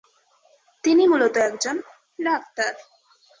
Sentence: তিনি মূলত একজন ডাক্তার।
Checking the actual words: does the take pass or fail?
pass